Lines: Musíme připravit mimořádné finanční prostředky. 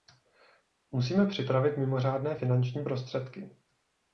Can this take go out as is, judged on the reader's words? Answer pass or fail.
pass